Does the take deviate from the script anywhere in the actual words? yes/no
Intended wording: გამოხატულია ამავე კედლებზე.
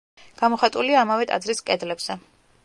yes